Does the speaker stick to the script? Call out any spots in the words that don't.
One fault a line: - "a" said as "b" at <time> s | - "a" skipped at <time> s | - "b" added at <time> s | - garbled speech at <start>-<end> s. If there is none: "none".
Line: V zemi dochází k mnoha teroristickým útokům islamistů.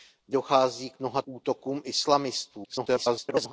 - "zemi" skipped at 0.3 s
- "teroristickým" skipped at 1.2 s
- garbled speech at 2.6-3.5 s